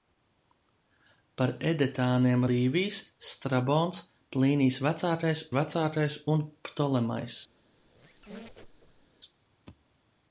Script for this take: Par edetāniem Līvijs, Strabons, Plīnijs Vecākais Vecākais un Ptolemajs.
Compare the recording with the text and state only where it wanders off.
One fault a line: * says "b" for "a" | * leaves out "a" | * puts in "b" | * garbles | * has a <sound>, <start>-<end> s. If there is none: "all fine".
* has a squeak, 7.8-9.1 s